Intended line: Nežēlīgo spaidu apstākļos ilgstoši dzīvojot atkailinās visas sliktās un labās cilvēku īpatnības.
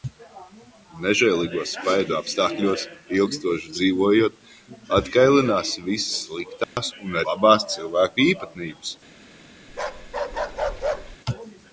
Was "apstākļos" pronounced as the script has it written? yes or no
yes